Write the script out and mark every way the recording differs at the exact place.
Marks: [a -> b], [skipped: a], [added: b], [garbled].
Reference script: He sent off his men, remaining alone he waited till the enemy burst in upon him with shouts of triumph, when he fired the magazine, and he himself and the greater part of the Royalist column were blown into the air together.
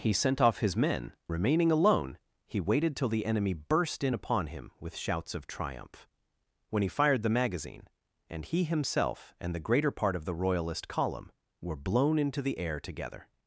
He sent off his men, remaining alone he waited till the enemy burst in upon him with shouts of triumph, when he fired the magazine, and he himself and the greater part of the Royalist column were blown into the air together.